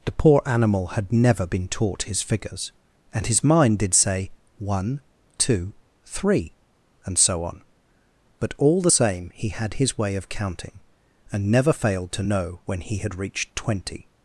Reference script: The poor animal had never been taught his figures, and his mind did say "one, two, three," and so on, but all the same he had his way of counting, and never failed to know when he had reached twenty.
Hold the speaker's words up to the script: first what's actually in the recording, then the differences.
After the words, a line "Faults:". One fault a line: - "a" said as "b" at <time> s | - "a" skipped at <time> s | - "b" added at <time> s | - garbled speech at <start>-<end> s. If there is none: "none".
The poor animal had never been taught his figures, and his mind did say "one, two, three," and so on, but all the same he had his way of counting, and never failed to know when he had reached twenty.
Faults:
none